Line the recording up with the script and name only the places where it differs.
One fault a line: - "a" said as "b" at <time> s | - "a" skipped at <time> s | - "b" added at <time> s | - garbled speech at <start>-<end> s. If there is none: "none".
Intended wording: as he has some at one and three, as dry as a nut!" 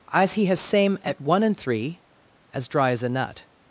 - "some" said as "same" at 0.6 s